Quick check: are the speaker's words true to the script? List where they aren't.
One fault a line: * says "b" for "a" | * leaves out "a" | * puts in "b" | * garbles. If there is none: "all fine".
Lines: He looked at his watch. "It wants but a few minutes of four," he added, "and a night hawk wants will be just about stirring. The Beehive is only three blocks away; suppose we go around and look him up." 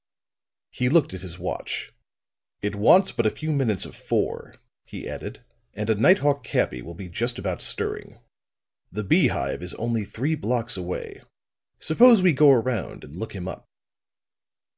* says "cabby" for "wants"